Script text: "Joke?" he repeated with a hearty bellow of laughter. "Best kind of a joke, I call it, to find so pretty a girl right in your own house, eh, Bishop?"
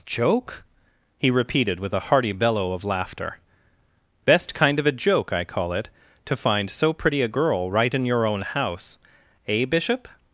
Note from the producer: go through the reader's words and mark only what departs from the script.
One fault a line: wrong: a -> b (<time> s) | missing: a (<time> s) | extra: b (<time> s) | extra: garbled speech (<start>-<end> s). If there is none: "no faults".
no faults